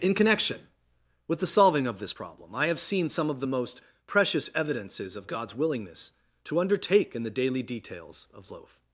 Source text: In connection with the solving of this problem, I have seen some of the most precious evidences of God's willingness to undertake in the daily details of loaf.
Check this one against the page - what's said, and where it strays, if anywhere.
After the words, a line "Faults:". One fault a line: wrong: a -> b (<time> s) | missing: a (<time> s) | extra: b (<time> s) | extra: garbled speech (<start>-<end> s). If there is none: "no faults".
In connection with the solving of this problem, I have seen some of the most precious evidences of God's willingness to undertake in the daily details of loaf.
Faults:
no faults